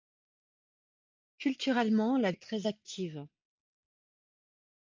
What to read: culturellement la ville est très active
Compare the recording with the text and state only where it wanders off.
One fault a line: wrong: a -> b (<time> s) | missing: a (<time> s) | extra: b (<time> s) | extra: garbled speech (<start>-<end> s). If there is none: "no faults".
missing: ville (2.3 s)